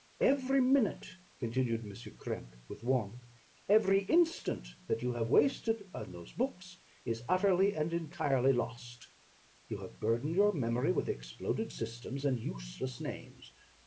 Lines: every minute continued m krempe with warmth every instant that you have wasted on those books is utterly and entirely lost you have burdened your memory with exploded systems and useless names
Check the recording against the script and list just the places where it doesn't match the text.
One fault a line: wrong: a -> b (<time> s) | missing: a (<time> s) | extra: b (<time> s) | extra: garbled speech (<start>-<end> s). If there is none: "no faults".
no faults